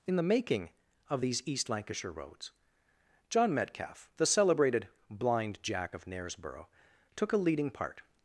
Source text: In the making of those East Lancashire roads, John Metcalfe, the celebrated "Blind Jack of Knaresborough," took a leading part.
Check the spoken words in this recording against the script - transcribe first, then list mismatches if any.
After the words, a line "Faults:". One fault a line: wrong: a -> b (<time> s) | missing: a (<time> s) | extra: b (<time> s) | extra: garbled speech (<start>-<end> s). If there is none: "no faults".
In the making of these East Lancashire roads, John Metcalfe, the celebrated "Blind Jack of Knaresborough," took a leading part.
Faults:
wrong: those -> these (1.2 s)